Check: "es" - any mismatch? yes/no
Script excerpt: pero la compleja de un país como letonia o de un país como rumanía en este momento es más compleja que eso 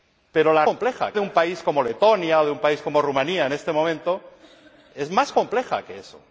no